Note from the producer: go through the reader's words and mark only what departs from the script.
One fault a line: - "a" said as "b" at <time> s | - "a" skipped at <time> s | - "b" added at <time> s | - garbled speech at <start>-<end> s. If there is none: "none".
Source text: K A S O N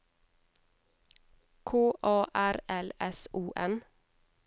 - "R L" added at 2.3 s